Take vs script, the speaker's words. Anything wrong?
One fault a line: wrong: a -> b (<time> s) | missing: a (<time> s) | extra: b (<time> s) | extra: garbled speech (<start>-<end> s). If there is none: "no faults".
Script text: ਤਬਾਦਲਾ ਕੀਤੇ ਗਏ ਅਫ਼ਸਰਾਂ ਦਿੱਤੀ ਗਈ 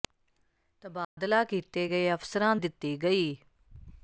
no faults